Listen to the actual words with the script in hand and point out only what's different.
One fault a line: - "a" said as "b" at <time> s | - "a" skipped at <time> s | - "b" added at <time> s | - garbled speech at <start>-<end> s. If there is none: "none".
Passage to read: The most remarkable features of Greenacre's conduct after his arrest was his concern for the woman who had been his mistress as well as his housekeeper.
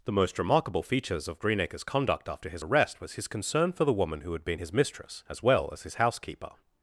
none